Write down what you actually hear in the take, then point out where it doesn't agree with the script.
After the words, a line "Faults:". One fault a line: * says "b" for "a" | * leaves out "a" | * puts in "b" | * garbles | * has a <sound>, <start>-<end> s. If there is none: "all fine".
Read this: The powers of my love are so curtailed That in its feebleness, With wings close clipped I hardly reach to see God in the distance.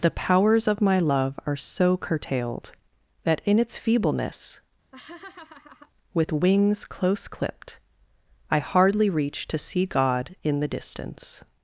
The powers of my love are so curtailed That in its feebleness, With wings close clipped I hardly reach to see God in the distance.
Faults:
* has a laugh, 4.9-5.9 s